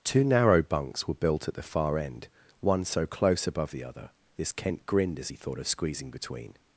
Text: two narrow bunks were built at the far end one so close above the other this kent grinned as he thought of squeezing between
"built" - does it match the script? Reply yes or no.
yes